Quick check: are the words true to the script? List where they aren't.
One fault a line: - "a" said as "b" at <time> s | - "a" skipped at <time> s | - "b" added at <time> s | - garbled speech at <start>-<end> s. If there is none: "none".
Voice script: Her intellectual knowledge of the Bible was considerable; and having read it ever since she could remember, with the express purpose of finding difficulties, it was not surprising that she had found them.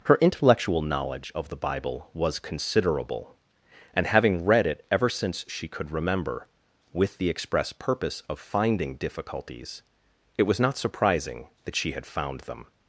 none